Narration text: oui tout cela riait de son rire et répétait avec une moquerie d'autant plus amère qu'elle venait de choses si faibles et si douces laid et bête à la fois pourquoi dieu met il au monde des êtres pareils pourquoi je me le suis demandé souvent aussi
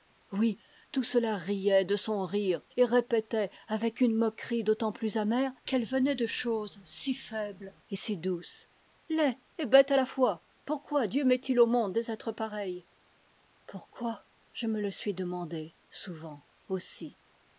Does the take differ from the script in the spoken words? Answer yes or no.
no